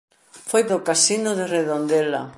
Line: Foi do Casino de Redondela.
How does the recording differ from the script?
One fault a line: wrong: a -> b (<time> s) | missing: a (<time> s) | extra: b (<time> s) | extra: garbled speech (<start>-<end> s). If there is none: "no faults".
no faults